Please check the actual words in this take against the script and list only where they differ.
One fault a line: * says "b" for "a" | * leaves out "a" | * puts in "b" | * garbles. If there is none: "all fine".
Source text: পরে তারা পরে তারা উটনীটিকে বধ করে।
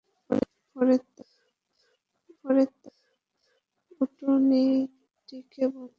all fine